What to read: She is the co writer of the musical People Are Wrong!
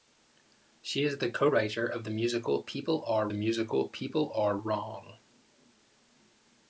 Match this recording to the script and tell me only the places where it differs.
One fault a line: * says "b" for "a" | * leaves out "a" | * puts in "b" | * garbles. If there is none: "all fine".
* puts in "musical People Are"